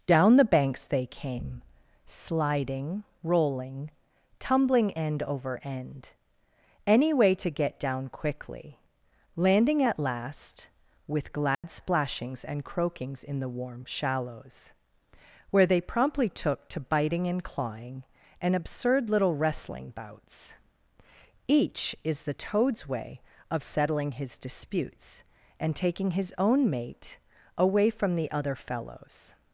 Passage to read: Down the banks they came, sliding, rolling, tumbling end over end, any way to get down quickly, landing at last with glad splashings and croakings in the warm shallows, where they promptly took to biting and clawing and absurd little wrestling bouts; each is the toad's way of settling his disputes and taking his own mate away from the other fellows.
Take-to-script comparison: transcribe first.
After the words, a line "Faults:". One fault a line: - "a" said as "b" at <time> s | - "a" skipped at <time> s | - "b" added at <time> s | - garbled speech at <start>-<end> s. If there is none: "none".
Down the banks they came, sliding, rolling, tumbling end over end, any way to get down quickly, landing at last with glad splashings and croakings in the warm shallows, where they promptly took to biting and clawing and absurd little wrestling bouts; each is the toad's way of settling his disputes and taking his own mate away from the other fellows.
Faults:
none